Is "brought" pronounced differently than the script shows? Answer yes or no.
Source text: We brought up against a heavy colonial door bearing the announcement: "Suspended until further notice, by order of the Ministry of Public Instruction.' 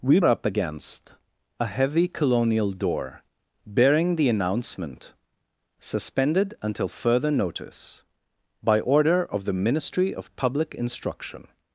yes